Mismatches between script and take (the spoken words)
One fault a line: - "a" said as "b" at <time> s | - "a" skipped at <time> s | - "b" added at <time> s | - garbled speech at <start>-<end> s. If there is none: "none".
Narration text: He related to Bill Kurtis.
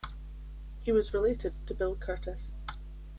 - "was" added at 0.9 s